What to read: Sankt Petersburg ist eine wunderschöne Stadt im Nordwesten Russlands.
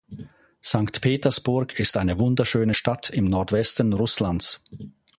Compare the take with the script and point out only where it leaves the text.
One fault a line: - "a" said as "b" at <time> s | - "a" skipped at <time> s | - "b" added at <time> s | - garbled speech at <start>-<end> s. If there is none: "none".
none